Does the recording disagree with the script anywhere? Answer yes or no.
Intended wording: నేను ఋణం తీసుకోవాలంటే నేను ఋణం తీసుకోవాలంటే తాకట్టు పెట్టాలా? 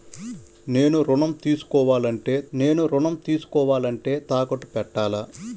no